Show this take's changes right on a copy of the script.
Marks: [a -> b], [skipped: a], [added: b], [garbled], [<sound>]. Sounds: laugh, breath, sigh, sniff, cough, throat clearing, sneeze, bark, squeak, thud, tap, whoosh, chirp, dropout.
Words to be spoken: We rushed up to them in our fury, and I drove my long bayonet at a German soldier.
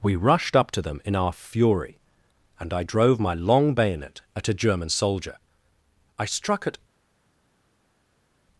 We rushed up to them in our fury, and I drove my long bayonet at a German soldier. [added: I struck at]